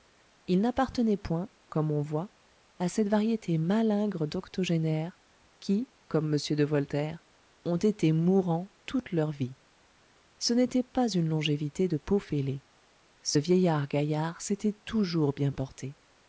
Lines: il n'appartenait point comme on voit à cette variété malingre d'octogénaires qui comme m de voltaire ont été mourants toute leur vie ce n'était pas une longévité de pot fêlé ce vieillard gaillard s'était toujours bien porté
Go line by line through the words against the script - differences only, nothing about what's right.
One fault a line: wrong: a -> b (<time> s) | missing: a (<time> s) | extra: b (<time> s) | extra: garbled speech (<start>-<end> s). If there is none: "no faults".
no faults